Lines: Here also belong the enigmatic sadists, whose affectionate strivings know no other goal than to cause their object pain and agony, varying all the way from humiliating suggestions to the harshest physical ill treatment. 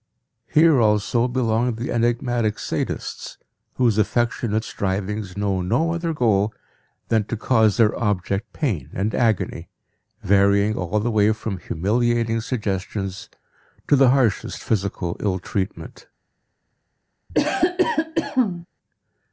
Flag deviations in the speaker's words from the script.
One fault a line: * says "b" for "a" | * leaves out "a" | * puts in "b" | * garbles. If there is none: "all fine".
all fine